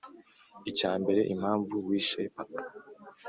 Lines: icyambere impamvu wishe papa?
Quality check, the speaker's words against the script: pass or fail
pass